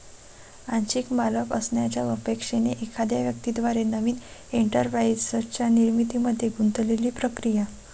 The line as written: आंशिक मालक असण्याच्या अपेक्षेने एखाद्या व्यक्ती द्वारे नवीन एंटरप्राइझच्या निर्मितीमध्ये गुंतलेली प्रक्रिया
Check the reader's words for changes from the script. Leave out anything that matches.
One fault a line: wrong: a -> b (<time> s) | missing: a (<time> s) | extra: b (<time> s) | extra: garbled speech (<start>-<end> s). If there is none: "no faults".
no faults